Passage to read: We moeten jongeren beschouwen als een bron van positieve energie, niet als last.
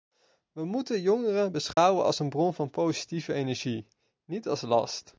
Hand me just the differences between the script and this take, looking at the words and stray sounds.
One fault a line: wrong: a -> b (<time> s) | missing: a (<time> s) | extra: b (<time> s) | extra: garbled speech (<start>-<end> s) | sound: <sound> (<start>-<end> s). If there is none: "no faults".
sound: dropout (1.7-1.8 s)